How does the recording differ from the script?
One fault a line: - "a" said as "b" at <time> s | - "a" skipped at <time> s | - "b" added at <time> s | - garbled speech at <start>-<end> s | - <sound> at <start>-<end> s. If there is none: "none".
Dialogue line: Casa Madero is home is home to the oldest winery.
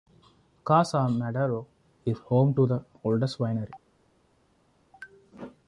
- "is home" skipped at 2.5 s